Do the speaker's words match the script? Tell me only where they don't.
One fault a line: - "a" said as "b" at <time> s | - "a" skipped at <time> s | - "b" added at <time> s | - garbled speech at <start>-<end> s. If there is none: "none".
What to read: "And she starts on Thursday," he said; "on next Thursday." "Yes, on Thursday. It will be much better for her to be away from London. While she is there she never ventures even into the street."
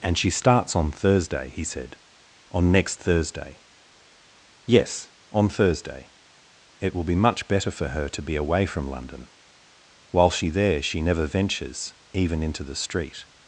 - "is" skipped at 10.5 s